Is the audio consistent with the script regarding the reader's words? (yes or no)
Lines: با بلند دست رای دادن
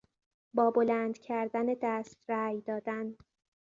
no